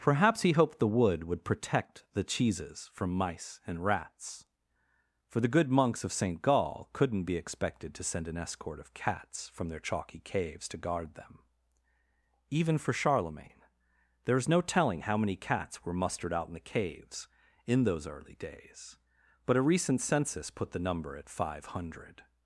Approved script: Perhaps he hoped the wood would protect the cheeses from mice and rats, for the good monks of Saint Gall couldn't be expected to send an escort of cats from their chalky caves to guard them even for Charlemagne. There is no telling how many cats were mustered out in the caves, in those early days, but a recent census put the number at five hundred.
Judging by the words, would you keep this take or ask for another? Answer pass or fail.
pass